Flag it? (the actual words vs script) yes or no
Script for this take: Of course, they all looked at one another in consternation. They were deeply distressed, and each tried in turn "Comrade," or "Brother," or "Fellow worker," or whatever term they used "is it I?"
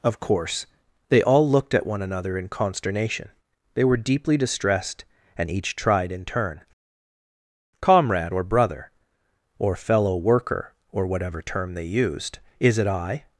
no